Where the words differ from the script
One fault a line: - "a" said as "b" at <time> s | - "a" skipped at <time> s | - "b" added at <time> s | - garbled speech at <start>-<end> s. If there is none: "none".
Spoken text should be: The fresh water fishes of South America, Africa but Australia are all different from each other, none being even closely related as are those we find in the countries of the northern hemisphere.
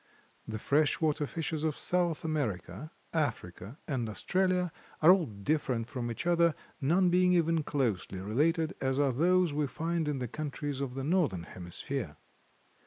- "but" said as "and" at 3.9 s